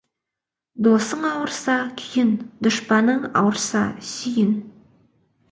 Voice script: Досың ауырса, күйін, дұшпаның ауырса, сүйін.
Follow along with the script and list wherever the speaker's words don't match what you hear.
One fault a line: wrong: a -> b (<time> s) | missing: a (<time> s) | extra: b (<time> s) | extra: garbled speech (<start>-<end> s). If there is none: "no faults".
no faults